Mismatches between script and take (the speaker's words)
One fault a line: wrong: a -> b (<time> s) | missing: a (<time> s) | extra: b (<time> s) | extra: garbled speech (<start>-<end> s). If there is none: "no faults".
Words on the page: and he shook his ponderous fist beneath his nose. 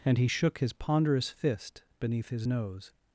no faults